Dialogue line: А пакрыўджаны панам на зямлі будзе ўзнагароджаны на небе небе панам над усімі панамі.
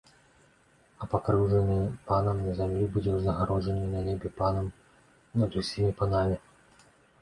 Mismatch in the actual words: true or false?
true